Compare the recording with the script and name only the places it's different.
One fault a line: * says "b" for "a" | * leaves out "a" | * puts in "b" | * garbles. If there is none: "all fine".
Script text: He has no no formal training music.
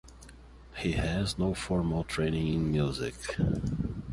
* leaves out "no"
* puts in "in"